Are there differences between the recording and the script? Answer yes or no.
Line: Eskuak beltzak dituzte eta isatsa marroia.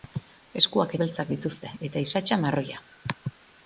no